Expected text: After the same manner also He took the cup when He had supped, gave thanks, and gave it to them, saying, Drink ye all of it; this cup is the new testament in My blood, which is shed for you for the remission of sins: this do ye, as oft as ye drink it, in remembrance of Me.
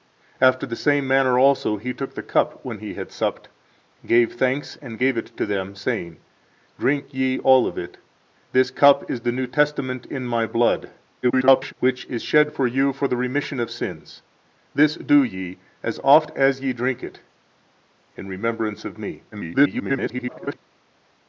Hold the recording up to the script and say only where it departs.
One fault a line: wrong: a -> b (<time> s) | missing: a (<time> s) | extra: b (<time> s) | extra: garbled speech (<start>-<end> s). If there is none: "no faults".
extra: garbled speech (11.2-11.7 s)
extra: garbled speech (19.3-20.6 s)